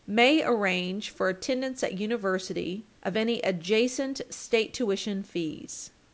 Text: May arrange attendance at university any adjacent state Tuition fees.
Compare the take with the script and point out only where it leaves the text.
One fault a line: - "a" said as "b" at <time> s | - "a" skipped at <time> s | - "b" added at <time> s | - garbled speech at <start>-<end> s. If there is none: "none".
- "for" added at 1.1 s
- "of" added at 3.0 s